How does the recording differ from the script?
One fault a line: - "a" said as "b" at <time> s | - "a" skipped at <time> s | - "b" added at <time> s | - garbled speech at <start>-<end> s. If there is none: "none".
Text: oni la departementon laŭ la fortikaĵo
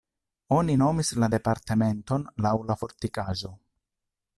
- "nomis" added at 0.8 s